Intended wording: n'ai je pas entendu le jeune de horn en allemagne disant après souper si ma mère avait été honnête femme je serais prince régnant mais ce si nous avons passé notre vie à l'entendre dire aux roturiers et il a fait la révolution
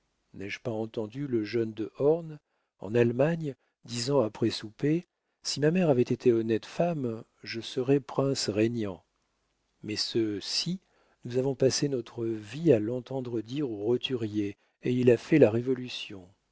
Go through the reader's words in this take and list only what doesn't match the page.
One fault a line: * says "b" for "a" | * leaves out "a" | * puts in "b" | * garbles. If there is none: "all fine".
all fine